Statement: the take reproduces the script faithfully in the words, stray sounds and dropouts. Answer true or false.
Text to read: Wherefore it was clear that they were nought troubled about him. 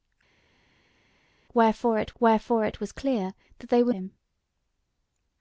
false